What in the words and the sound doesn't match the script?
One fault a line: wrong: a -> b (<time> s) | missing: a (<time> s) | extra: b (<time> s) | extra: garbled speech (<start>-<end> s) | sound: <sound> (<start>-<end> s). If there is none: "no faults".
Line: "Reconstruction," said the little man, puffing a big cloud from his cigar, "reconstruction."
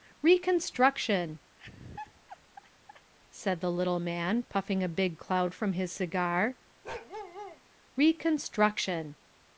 sound: laugh (1.6-3.1 s)
sound: bark (6.8-7.6 s)